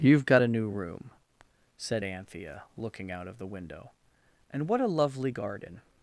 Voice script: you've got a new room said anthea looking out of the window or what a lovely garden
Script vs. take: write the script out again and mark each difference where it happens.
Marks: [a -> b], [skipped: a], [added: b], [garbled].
you've got a new room said anthea looking out of the window [or -> and] what a lovely garden